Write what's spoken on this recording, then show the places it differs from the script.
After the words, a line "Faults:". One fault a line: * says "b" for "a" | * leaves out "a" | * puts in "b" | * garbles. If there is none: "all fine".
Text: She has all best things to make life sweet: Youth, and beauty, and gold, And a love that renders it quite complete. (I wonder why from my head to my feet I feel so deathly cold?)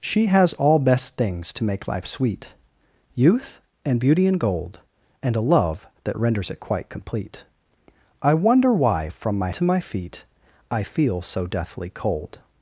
She has all best things to make life sweet: Youth, and beauty, and gold, And a love that renders it quite complete. (I wonder why from my to my feet I feel so deathly cold?)
Faults:
* leaves out "head"